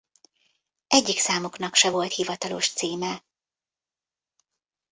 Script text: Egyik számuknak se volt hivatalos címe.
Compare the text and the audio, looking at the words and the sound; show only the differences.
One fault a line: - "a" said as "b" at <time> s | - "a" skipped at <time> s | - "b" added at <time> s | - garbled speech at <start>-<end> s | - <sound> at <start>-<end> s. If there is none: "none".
none